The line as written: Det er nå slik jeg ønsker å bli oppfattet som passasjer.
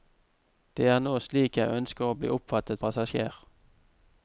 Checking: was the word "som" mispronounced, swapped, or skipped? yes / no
yes